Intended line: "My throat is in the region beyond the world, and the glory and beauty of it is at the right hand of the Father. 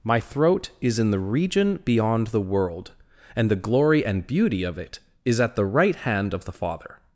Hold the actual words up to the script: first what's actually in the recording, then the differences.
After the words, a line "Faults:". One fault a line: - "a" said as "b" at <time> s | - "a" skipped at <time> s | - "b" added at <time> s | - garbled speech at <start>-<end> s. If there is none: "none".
"My throat is in the region beyond the world, and the glory and beauty of it is at the right hand of the Father.
Faults:
none